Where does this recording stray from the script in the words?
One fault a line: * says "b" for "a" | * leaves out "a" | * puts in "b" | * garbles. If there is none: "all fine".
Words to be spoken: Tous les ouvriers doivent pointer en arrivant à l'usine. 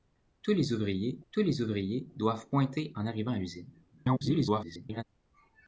* puts in "tous les ouvriers"
* garbles